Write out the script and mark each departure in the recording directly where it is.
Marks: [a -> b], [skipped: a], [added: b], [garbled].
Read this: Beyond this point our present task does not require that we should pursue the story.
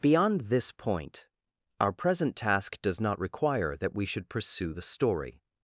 Beyond this point our present task does not require that we should pursue the story.